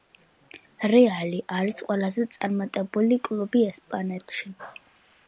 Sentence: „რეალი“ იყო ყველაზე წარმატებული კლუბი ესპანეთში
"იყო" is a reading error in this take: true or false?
true